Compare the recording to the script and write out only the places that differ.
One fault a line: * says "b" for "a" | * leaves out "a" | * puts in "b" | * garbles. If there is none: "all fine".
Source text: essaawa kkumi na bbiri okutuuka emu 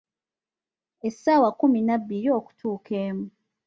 all fine